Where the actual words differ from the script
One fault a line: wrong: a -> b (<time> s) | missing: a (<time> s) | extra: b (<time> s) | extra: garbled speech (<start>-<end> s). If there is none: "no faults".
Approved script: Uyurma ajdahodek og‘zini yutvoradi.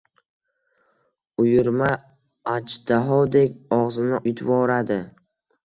no faults